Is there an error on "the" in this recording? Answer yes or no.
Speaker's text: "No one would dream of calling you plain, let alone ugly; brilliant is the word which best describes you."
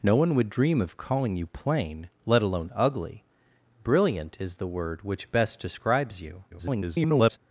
no